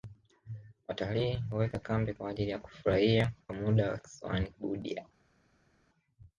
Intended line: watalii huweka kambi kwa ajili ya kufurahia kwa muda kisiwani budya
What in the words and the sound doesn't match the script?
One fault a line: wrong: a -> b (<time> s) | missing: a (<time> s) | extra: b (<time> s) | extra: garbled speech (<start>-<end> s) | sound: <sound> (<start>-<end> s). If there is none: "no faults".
no faults